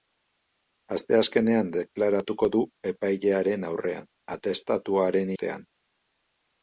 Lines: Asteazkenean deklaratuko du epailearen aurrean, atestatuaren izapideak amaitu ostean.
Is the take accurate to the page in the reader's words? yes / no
no